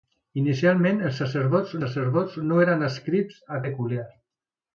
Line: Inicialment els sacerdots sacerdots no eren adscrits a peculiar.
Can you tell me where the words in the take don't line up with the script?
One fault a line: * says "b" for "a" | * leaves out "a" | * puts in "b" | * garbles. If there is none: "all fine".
all fine